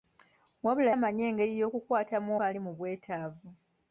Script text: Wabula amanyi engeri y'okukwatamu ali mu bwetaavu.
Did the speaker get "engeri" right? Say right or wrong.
right